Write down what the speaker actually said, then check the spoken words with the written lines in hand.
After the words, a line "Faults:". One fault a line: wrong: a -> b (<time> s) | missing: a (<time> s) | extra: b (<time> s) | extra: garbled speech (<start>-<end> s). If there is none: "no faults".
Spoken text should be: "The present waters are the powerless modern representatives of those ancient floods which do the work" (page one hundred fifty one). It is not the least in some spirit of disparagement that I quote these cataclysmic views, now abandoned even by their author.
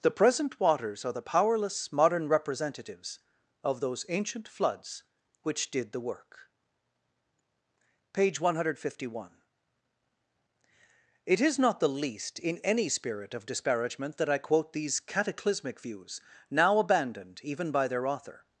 "The present waters are the powerless modern representatives of those ancient floods which did the work" (page one hundred fifty one). It is not the least in any spirit of disparagement that I quote these cataclysmic views, now abandoned even by their author.
Faults:
wrong: do -> did (5.7 s)
wrong: some -> any (12.6 s)